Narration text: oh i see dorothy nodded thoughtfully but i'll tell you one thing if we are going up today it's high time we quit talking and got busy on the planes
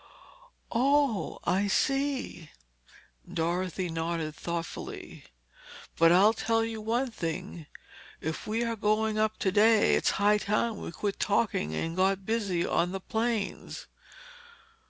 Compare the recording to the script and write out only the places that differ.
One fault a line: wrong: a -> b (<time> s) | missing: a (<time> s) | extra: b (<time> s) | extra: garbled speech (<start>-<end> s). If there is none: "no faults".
no faults